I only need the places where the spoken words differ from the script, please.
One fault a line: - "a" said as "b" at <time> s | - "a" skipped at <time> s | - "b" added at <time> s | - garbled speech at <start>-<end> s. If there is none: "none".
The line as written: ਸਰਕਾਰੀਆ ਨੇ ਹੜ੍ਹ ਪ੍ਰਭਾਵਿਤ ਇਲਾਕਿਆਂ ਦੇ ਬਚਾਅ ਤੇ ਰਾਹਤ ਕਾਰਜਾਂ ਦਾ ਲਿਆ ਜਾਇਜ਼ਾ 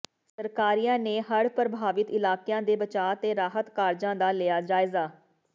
none